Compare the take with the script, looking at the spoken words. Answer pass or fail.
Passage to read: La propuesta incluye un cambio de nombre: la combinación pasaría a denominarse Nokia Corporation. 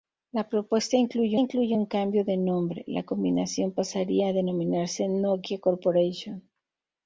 fail